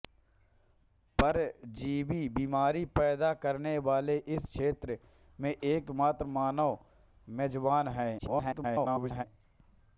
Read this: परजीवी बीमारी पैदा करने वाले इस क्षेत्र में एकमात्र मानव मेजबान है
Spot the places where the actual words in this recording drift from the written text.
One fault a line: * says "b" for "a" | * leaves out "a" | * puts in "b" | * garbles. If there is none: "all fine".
* garbles